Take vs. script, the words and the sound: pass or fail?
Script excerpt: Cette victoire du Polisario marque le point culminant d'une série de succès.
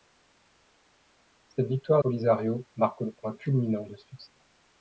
fail